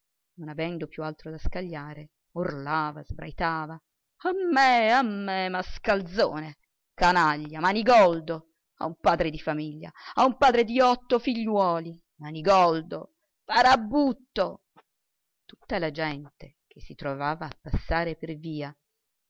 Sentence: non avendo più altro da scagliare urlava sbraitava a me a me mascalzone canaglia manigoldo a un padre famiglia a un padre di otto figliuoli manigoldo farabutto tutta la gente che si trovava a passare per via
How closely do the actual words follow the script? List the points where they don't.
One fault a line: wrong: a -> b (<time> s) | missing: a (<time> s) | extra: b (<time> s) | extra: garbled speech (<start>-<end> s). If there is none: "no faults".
extra: di (9.3 s)